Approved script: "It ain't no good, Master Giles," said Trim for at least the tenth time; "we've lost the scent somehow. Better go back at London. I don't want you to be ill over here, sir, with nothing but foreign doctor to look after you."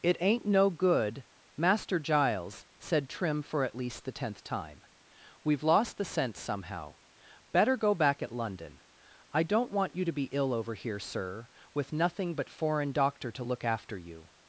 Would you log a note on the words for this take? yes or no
no